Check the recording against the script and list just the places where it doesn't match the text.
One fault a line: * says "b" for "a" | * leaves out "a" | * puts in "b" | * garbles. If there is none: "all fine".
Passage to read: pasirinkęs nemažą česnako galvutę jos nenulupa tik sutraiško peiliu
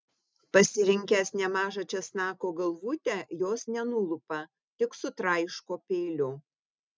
all fine